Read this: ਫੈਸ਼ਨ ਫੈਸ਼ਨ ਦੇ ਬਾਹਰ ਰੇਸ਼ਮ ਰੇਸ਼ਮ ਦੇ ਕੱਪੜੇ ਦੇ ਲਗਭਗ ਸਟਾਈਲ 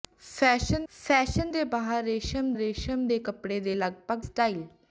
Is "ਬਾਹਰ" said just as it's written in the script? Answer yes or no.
yes